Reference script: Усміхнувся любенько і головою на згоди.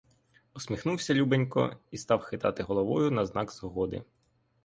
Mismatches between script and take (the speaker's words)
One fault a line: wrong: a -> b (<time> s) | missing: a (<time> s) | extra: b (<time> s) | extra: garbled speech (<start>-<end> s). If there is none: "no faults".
extra: став хитати (2.0 s)
extra: знак (3.2 s)